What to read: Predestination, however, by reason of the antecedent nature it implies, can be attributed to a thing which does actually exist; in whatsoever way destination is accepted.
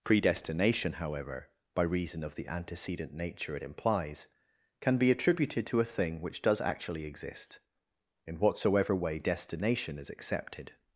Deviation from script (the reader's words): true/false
false